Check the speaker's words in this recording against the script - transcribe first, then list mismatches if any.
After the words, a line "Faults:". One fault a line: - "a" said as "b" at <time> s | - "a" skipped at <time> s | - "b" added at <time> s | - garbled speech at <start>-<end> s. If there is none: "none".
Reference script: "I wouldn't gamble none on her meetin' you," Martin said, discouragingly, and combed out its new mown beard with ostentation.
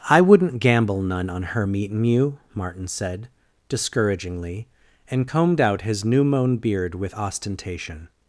"I wouldn't gamble none on her meetin' you," Martin said, discouragingly, and combed out his new mown beard with ostentation.
Faults:
- "its" said as "his" at 5.8 s